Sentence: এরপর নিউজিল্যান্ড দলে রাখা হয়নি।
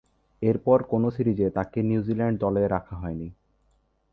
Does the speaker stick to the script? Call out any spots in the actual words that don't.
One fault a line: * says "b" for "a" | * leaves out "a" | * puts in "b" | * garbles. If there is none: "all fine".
* puts in "কোন সিরিজে তাকে"